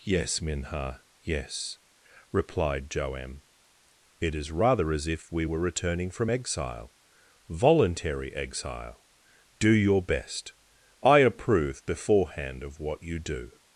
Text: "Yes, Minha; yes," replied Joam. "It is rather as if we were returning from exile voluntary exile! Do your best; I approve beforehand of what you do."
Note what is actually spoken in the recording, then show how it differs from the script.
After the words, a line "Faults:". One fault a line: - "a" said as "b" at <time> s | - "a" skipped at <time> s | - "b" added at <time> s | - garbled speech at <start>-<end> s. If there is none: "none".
"Yes, Minha; yes," replied Joam. "It is rather as if we were returning from exile voluntary exile! Do your best; I approve beforehand of what you do."
Faults:
none